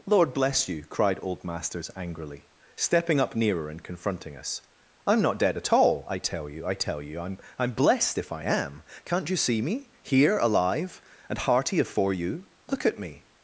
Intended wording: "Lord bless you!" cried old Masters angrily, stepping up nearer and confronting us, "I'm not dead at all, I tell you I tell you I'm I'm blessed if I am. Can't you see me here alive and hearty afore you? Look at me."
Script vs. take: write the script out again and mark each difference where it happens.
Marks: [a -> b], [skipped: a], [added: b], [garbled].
"Lord bless you!" cried old Masters angrily, stepping up nearer and confronting us, "I'm not dead at all, I tell you I tell you I'm I'm blessed if I am. Can't you see me here alive and hearty afore you? Look at me."